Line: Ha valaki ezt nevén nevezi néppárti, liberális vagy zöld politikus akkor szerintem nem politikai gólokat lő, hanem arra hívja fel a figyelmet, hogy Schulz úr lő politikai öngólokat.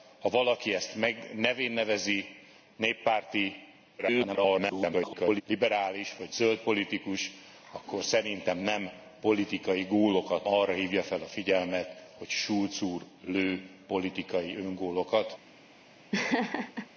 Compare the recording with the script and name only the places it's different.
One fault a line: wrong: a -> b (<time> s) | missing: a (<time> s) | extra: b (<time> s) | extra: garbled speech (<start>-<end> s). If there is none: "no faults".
extra: garbled speech (4.0-5.4 s)
missing: lő hanem (10.5 s)